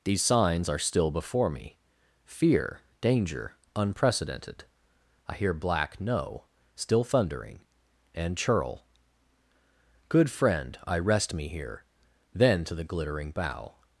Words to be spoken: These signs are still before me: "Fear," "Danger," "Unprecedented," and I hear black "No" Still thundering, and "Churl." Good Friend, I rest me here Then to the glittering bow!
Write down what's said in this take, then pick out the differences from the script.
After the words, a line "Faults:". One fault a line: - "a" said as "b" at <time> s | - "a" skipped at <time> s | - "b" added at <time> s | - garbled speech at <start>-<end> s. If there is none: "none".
These signs are still before me: "Fear," "Danger," "Unprecedented," I hear black "No" Still thundering, and "Churl." Good Friend, I rest me here Then to the glittering bow!
Faults:
- "and" skipped at 4.7 s